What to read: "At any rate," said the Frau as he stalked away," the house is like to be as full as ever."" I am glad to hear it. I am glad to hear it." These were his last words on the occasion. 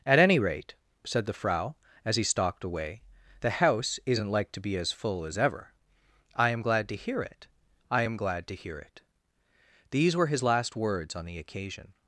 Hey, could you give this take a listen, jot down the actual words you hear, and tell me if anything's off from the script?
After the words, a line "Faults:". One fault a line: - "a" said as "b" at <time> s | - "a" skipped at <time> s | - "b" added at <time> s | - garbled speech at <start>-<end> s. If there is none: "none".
"At any rate," said the Frau as he stalked away," the house isn't like to be as full as ever."" I am glad to hear it. I am glad to hear it." These were his last words on the occasion.
Faults:
- "is" said as "isn't" at 4.0 s